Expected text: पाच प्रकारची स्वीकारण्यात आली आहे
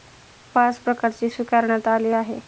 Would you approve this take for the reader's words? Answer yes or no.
yes